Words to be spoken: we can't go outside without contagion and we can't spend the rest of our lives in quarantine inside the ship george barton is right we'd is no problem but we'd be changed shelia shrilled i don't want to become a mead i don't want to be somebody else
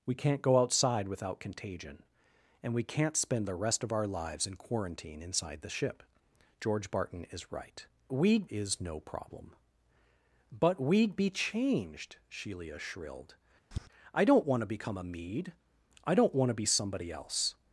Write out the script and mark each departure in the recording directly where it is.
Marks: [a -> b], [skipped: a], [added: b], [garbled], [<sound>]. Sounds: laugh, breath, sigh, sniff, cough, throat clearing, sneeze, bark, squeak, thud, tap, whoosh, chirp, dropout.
we can't go outside without contagion and we can't spend the rest of our lives in quarantine inside the ship george barton is right we'd is no problem but we'd be changed shelia shrilled [tap] i don't want to become a mead i don't want to be somebody else